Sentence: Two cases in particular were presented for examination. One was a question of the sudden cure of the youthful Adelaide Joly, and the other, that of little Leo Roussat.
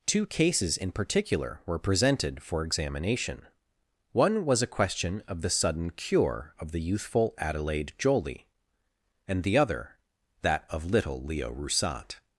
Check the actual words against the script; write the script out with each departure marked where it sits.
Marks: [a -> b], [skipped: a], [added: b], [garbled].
Two cases in particular were presented for examination. One was a question of the sudden cure of the youthful Adelaide Joly, and the other, that of little Leo Roussat.